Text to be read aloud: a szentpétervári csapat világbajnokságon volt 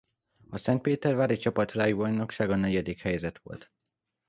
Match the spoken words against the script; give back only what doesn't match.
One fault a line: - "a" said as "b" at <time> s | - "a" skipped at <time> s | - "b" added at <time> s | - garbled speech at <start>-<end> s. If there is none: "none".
- "negyedik helyezett" added at 2.6 s